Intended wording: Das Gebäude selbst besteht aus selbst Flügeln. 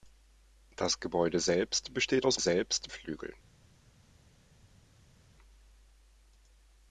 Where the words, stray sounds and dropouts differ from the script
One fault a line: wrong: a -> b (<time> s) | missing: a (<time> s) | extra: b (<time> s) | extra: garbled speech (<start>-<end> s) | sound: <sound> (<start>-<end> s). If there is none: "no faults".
no faults